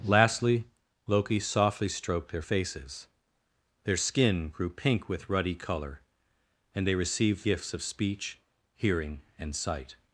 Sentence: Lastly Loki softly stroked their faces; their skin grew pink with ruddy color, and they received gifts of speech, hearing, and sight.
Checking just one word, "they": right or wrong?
right